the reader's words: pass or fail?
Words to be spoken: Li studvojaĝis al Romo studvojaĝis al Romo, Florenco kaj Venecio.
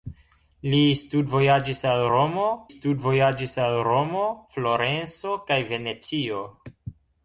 pass